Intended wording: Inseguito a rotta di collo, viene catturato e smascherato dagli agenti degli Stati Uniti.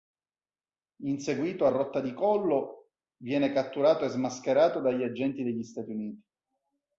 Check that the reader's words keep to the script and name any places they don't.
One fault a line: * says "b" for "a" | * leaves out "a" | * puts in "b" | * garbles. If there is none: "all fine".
all fine